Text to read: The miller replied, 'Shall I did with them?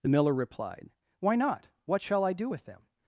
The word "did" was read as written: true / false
false